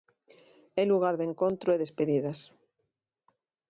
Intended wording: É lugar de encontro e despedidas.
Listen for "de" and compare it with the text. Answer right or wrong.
right